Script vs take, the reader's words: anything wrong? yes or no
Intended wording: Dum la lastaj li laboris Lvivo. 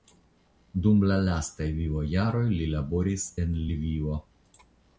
yes